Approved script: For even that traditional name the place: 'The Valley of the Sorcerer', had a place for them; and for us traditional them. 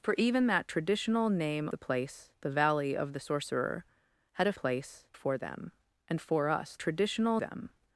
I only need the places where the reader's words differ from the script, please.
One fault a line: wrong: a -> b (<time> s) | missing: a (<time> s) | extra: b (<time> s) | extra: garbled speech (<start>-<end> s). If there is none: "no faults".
no faults